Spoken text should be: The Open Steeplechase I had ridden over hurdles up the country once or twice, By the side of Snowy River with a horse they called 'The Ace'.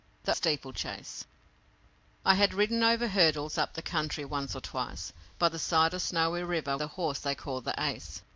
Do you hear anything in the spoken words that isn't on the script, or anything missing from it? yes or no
yes